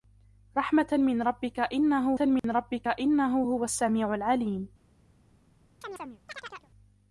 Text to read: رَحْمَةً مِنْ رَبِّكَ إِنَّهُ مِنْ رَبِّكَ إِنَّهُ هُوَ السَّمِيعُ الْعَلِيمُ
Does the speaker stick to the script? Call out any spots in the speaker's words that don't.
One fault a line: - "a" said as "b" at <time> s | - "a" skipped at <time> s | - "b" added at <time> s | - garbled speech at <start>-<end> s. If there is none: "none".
none